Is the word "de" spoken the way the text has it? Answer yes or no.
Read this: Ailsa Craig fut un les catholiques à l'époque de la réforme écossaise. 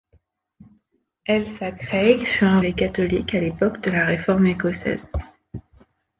yes